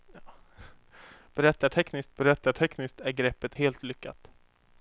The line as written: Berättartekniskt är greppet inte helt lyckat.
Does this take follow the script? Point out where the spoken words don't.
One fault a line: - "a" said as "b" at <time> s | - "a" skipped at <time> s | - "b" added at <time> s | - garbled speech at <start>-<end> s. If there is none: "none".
- "berättartekniskt" added at 2.1 s
- "inte" skipped at 3.6 s